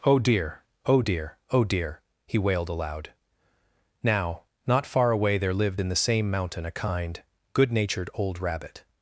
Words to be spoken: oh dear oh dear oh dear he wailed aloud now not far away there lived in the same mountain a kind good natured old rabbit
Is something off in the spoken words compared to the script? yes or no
no